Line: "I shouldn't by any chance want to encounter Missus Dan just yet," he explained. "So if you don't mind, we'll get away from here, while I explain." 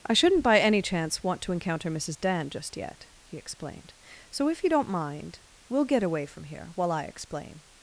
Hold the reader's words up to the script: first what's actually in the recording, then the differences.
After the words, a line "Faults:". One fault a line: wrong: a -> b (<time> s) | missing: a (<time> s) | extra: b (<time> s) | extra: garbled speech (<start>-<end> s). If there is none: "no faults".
"I shouldn't by any chance want to encounter Missus Dan just yet," he explained. "So if you don't mind, we'll get away from here, while I explain."
Faults:
no faults